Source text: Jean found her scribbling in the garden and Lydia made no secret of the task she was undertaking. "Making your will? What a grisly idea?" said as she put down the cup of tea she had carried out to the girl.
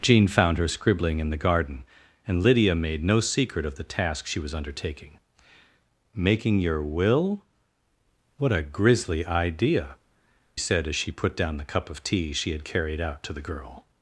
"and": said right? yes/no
yes